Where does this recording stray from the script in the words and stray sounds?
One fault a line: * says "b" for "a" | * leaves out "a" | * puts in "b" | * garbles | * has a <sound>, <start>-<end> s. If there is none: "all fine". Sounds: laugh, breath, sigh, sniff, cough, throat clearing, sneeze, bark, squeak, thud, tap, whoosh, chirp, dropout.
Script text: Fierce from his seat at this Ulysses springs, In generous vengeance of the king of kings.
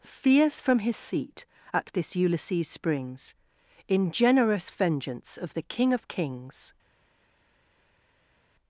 all fine